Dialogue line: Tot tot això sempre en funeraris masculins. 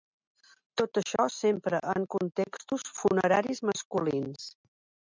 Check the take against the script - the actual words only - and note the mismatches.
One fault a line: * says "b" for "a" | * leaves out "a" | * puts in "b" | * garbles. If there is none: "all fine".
* leaves out "tot"
* puts in "contextos"